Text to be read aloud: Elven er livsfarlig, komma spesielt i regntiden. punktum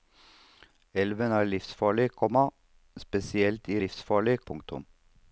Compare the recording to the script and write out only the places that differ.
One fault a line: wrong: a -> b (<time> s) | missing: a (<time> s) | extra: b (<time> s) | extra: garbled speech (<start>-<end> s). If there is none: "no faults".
wrong: regntiden -> livsfarlig (3.8 s)